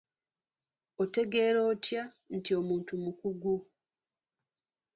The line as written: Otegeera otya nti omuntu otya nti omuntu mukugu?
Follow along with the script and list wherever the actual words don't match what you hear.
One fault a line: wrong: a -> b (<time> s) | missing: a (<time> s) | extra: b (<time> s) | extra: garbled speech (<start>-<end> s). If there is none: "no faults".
missing: otya nti omuntu (2.9 s)